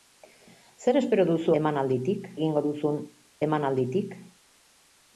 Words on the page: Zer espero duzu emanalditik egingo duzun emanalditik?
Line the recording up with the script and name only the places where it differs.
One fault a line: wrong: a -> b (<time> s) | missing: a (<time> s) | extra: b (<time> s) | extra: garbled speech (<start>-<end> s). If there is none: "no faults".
no faults